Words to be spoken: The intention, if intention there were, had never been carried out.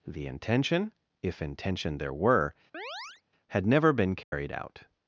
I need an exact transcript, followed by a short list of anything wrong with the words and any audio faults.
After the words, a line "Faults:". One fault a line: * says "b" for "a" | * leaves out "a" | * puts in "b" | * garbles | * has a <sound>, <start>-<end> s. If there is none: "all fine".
The intention, if intention there were, had never been carried out.
Faults:
* has a chirp, 2.7-3.2 s
* has a dropout, 4.2-4.3 s